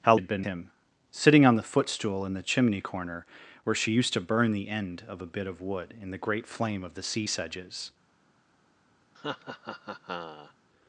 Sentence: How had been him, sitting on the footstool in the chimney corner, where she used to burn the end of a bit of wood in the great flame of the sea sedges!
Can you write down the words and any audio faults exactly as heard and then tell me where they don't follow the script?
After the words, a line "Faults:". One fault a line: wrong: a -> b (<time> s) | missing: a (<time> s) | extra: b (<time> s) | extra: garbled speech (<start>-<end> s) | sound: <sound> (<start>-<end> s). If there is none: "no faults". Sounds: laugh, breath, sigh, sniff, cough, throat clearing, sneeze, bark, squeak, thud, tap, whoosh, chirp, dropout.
How had been him, sitting on the footstool in the chimney corner, where she used to burn the end of a bit of wood in the great flame of the sea sedges!
Faults:
sound: laugh (9.1-10.5 s)